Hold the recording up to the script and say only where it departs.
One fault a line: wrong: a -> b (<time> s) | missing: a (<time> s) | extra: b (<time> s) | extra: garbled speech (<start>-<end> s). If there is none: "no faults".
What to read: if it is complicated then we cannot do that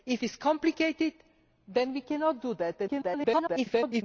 missing: it (0.2 s)
extra: garbled speech (2.9-4.0 s)